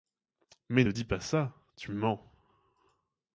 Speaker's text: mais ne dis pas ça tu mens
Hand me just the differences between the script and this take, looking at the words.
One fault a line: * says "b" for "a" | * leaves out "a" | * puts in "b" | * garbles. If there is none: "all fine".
all fine